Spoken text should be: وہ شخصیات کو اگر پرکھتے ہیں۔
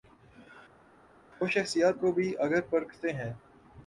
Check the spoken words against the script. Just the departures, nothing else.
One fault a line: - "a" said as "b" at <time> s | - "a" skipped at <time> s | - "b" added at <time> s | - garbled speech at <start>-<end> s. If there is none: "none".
- "بھی" added at 2.1 s